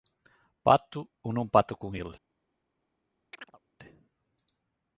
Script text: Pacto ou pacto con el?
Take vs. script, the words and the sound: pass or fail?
fail